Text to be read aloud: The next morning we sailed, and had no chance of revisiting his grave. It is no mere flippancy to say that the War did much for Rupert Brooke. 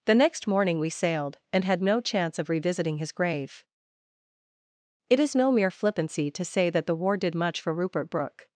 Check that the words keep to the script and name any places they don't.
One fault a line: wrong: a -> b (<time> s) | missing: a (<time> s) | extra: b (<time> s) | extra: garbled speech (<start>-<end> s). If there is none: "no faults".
no faults